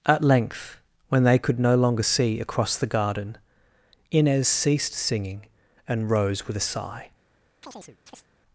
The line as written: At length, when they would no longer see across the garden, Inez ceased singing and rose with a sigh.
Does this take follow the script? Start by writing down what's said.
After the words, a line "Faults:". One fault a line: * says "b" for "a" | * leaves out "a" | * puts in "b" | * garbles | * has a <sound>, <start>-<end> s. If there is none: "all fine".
At length, when they could no longer see across the garden, Inez ceased singing and rose with a sigh.
Faults:
* says "could" for "would"
* has a chirp, 7.6-8.3 s